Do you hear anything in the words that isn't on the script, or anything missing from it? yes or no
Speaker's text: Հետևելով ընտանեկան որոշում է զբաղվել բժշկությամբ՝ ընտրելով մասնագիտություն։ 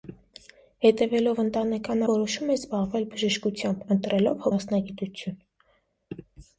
no